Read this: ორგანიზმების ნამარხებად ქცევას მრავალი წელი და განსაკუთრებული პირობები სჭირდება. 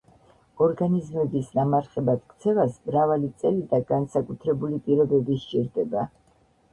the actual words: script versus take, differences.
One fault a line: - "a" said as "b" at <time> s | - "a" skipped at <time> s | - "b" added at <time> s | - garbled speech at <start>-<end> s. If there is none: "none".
none